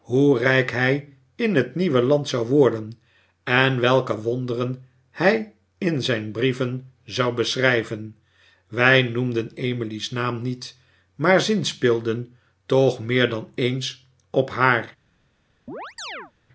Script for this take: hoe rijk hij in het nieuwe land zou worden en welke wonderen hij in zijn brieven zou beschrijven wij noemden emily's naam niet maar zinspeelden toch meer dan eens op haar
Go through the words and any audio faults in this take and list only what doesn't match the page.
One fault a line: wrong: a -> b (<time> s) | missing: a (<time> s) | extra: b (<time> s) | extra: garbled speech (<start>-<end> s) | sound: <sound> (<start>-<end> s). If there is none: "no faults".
sound: chirp (15.7-16.3 s)